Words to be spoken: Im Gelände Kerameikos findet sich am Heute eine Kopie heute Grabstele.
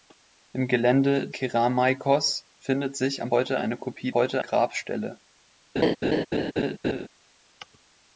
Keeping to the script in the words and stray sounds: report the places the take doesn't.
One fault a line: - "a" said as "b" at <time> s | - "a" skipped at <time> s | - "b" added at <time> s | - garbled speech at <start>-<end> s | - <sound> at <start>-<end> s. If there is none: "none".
- laugh at 5.8-7.1 s